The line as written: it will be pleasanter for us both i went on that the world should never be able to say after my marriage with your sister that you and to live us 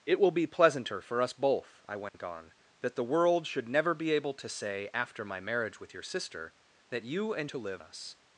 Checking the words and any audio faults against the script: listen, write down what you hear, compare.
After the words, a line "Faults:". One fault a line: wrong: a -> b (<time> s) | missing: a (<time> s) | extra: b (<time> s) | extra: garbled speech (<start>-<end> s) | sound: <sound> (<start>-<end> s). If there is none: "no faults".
it will be pleasanter for us both i went on that the world should never be able to say after my marriage with your sister that you and to live us
Faults:
sound: dropout (2.1-2.1 s)